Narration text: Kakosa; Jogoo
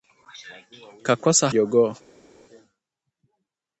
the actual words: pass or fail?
pass